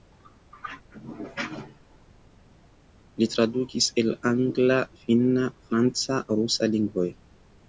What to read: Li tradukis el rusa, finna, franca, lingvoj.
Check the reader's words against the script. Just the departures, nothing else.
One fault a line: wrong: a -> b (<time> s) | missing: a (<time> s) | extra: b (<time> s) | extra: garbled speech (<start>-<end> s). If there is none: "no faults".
wrong: rusa -> angla (4.3 s)
extra: rusa (6.4 s)